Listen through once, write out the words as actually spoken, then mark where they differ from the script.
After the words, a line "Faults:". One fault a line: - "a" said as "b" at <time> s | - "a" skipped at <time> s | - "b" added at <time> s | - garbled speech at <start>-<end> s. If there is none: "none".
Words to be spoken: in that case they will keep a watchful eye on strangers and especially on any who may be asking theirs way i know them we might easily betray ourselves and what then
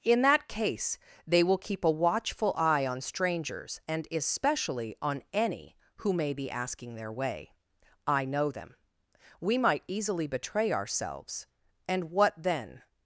in that case they will keep a watchful eye on strangers and especially on any who may be asking their way i know them we might easily betray ourselves and what then
Faults:
- "theirs" said as "their" at 7.0 s